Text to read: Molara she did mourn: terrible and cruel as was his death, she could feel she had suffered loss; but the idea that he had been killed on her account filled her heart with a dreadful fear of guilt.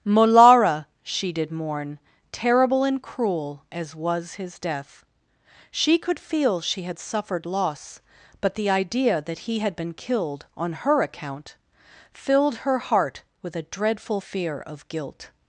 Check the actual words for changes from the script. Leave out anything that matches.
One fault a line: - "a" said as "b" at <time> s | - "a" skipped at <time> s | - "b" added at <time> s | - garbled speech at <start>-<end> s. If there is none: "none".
none